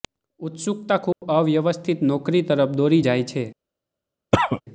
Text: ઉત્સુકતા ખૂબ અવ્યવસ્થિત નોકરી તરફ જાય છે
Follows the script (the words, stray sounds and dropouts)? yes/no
no